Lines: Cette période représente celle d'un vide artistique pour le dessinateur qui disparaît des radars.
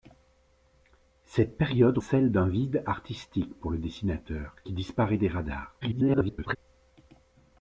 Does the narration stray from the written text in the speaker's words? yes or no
yes